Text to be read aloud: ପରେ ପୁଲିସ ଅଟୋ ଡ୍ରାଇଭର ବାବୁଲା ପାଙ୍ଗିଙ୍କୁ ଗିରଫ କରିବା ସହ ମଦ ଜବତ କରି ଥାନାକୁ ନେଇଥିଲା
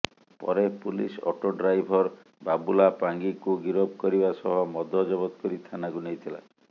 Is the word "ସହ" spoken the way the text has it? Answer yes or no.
yes